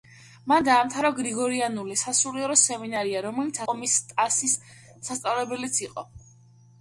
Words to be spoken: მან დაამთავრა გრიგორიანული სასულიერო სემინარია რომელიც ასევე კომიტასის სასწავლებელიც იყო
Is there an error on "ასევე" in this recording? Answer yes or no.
yes